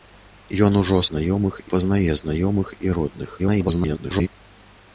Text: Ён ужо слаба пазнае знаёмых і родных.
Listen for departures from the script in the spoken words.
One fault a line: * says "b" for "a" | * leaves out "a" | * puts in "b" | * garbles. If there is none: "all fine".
* says "знаёмых" for "слаба"
* garbles